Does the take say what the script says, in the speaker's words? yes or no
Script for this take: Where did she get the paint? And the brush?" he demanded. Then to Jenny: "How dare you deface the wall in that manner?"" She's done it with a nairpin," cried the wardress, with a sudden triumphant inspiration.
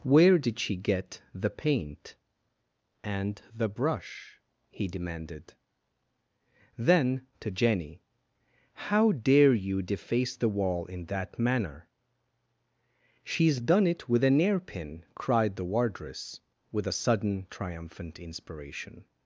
yes